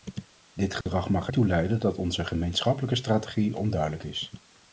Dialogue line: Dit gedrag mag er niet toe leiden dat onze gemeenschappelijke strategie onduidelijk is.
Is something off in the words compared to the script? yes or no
yes